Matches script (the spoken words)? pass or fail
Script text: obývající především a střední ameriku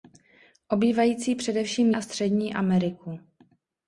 pass